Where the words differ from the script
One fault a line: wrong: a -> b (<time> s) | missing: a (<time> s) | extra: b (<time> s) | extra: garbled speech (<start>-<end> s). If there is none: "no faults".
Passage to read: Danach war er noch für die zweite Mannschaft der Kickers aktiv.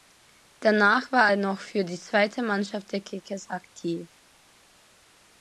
no faults